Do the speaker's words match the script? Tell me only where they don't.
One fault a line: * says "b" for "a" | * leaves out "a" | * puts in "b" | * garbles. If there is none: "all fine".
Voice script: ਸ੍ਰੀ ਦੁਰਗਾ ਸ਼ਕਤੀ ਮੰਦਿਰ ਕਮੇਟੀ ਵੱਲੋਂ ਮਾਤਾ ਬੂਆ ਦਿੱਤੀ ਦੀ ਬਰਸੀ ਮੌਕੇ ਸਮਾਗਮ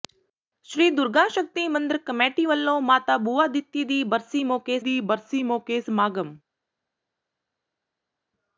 * puts in "ਦੀ ਬਰਸੀ ਮੌਕੇ"